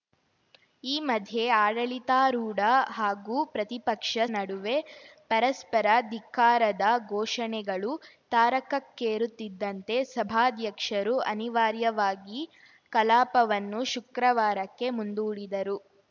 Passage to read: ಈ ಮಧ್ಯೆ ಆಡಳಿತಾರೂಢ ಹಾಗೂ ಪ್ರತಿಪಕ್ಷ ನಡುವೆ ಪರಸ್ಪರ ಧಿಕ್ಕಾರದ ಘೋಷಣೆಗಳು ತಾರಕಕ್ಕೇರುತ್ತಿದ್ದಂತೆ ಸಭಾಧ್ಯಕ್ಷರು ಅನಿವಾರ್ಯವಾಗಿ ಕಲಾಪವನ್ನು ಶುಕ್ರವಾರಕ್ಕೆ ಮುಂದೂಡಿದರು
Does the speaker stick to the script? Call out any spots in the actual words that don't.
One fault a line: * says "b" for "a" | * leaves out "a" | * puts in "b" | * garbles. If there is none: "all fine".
all fine